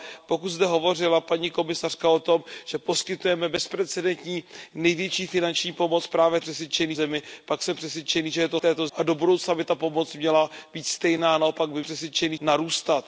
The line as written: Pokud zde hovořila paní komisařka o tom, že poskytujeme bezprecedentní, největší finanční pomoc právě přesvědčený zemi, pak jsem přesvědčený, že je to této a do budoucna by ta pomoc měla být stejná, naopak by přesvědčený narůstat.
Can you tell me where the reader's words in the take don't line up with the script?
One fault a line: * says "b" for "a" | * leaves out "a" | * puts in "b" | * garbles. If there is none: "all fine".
all fine